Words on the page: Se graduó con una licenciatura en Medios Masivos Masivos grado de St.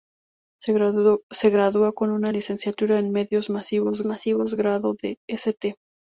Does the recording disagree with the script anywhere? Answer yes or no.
no